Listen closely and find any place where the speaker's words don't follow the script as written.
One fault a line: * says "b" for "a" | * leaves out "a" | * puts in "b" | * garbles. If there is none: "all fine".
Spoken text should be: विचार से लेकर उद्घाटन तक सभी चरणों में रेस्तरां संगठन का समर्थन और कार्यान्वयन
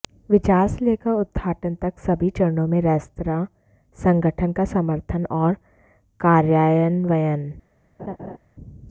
all fine